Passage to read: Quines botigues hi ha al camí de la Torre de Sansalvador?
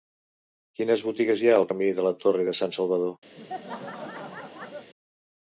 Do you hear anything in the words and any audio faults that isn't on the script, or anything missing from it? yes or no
yes